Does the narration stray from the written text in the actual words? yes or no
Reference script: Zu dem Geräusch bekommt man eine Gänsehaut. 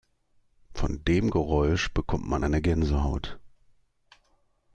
yes